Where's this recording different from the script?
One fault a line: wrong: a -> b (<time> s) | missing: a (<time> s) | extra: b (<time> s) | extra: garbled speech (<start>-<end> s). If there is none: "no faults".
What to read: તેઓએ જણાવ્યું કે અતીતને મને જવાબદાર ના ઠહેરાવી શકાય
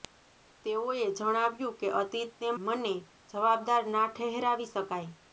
no faults